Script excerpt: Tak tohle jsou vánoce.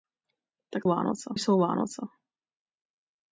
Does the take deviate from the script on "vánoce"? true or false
false